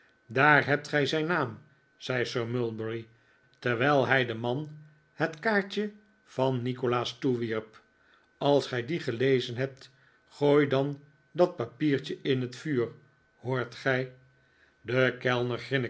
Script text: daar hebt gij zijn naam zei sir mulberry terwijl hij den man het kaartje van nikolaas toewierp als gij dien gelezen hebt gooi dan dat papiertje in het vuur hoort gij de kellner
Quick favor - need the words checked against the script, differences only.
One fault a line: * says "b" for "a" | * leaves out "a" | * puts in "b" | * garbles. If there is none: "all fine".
all fine